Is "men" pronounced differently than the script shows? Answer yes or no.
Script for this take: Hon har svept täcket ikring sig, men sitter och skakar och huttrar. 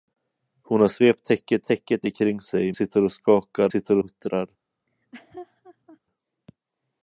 yes